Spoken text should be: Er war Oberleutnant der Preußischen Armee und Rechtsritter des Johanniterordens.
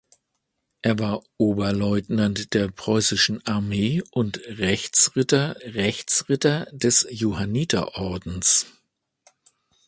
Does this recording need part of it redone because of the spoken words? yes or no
yes